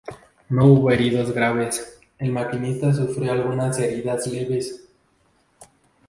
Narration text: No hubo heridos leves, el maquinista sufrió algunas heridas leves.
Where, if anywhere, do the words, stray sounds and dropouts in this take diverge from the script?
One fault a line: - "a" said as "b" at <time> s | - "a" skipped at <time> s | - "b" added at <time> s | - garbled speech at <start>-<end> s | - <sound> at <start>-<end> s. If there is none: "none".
- "leves" said as "graves" at 1.3 s